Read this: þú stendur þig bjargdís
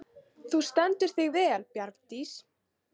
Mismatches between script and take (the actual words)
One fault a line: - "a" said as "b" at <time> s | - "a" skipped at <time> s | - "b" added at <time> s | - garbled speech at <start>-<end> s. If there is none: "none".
- "vel" added at 1.4 s